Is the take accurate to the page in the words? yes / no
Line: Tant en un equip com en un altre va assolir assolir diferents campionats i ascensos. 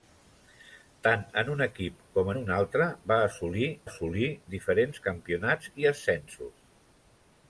yes